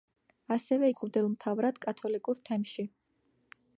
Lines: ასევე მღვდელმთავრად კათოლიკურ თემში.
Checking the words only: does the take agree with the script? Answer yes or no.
yes